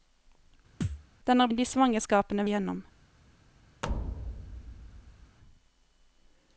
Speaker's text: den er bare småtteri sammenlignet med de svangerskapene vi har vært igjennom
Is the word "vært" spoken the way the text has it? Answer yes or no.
no